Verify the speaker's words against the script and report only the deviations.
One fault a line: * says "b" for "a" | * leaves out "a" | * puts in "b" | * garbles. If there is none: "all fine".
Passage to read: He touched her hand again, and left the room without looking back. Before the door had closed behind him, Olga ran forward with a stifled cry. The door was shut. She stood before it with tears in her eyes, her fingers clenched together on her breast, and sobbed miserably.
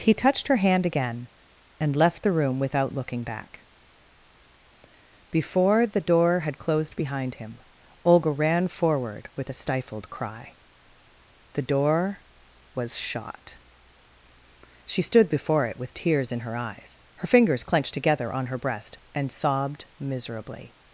* says "shot" for "shut"